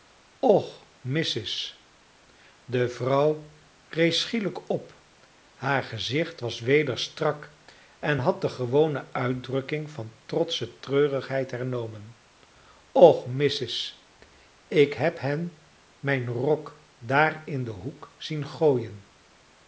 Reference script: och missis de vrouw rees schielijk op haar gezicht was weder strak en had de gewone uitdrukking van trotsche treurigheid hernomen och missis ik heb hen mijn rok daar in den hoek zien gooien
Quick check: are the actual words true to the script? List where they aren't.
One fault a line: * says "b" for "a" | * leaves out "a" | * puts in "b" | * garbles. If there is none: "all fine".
all fine